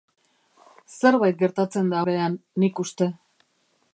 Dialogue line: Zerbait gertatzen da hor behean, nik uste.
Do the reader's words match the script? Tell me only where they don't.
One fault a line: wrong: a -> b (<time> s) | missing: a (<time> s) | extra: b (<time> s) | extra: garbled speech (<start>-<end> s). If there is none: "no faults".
missing: hor (2.0 s)